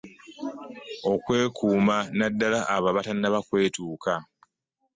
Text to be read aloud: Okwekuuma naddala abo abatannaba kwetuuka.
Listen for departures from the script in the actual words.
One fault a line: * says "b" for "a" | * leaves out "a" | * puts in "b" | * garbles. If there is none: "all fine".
all fine